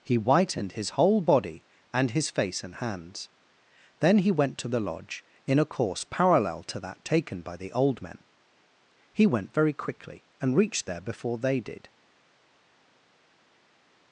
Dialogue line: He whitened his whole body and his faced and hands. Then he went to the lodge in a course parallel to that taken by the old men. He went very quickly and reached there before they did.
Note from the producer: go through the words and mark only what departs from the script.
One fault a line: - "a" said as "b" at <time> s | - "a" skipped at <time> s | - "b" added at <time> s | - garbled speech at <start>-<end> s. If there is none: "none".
- "faced" said as "face" at 2.3 s